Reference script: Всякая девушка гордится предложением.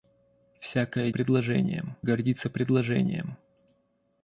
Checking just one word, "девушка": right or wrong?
wrong